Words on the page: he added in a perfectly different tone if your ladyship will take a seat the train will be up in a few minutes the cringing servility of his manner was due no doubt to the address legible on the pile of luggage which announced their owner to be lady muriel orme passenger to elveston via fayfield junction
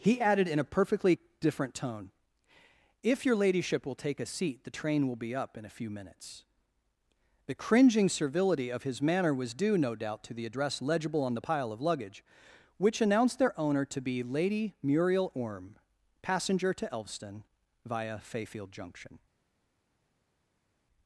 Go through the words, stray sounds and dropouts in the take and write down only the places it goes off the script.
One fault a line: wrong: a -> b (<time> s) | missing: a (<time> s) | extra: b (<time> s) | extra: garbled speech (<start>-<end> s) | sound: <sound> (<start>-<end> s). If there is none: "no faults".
no faults